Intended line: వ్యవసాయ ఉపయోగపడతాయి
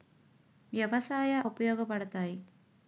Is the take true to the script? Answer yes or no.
yes